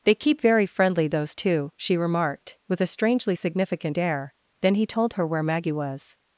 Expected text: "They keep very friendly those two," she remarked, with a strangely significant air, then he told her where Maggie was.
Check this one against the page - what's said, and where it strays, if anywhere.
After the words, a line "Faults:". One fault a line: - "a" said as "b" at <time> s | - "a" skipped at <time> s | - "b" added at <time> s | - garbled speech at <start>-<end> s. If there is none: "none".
"They keep very friendly those two," she remarked, with a strangely significant air, then he told her where Maggie was.
Faults:
none